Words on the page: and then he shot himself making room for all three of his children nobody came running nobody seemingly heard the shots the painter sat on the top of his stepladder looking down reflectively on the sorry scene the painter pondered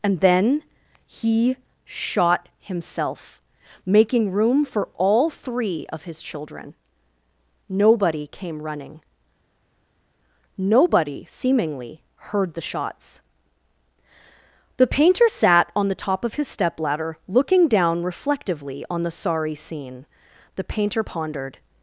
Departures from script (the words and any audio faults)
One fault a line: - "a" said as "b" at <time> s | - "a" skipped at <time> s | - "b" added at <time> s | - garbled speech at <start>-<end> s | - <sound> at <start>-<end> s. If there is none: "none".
none